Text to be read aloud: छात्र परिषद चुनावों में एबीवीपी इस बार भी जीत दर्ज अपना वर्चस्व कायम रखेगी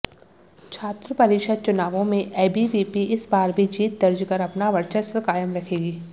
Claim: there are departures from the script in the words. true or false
true